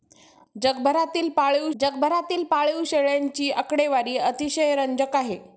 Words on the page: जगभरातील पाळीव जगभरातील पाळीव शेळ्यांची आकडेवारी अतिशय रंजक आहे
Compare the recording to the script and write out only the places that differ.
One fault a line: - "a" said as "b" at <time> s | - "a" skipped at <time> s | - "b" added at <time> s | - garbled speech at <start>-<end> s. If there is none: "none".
none